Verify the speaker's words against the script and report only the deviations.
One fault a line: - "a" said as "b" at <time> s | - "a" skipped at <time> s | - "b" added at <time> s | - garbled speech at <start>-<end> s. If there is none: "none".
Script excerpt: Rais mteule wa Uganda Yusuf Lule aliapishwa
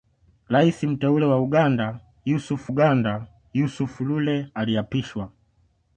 - "Uganda Yusuf" added at 2.7 s